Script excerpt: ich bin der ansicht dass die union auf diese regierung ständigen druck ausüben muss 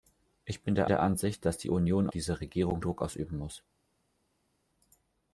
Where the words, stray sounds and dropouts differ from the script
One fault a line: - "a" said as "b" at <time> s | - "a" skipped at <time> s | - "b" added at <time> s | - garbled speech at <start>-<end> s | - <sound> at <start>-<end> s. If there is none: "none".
- "der" added at 0.9 s
- "auf" skipped at 2.1 s
- "ständigen" skipped at 2.8 s